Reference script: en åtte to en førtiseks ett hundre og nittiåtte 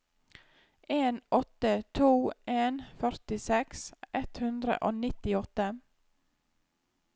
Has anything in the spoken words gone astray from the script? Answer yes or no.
no